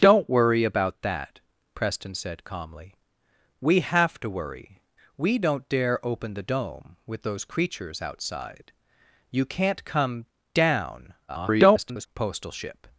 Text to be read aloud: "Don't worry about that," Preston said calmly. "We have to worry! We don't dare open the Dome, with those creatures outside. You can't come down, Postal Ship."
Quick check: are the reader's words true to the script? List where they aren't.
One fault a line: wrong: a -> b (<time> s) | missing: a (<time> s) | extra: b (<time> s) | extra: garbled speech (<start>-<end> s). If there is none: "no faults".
extra: garbled speech (11.3-12.1 s)